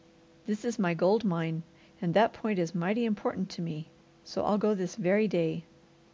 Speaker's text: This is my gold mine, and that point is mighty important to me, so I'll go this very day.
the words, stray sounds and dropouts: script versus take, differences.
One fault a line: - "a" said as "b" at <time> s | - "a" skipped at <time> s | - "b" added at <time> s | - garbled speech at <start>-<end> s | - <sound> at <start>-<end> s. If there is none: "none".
none